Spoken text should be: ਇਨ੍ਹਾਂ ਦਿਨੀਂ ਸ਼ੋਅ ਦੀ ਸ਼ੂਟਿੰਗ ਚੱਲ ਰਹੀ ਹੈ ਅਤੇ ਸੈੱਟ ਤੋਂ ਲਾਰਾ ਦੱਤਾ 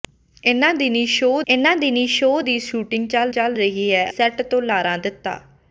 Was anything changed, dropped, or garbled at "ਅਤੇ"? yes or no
yes